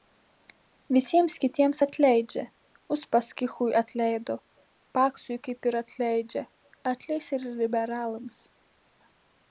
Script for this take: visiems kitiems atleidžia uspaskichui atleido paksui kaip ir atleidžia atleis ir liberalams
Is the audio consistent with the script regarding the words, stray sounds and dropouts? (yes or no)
yes